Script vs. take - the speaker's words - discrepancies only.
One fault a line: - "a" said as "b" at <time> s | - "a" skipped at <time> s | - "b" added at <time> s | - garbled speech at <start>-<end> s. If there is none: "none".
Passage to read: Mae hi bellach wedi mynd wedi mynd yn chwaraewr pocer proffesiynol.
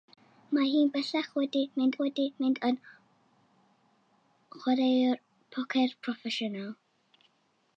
none